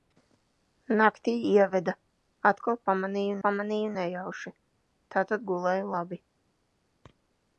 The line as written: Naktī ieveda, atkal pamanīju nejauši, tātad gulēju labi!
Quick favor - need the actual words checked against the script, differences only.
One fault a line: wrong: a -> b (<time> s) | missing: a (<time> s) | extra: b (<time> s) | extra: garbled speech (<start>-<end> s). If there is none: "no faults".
extra: pamanīju (3.5 s)